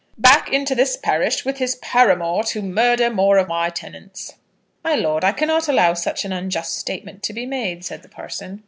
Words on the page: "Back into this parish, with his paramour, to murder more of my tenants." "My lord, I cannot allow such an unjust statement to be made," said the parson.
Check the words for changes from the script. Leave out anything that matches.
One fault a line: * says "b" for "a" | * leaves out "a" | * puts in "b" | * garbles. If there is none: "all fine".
all fine